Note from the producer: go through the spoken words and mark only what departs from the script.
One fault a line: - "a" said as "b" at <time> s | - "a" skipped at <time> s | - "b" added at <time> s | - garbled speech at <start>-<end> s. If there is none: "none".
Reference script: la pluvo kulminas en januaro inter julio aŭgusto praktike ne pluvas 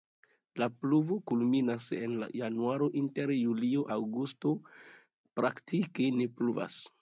none